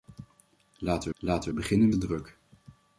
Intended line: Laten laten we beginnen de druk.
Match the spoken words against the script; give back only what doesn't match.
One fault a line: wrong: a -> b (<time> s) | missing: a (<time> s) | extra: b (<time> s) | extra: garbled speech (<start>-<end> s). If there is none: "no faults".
no faults